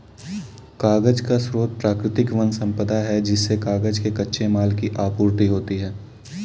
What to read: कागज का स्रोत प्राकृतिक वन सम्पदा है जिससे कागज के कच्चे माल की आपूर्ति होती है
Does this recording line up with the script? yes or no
yes